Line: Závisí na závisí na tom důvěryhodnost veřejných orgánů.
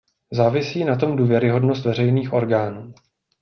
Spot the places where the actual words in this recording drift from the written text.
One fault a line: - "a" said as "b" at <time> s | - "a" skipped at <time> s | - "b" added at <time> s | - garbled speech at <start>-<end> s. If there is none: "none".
- "závisí na" skipped at 0.9 s